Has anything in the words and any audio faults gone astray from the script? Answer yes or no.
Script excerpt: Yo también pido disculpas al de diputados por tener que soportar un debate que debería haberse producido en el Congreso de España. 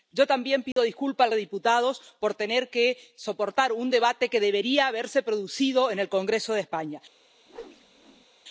yes